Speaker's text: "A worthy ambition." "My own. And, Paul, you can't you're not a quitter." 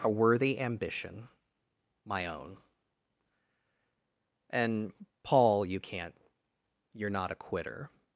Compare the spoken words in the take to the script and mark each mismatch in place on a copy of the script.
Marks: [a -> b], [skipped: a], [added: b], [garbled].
"A worthy ambition." "My own. And, Paul, you can't you're not a quitter."